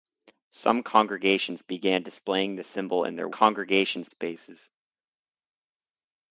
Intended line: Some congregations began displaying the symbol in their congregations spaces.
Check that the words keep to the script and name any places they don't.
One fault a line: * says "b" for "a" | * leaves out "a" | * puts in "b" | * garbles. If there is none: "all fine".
all fine